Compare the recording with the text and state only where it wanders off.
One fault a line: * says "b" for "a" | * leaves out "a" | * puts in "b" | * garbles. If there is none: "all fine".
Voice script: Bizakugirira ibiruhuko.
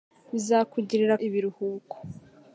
all fine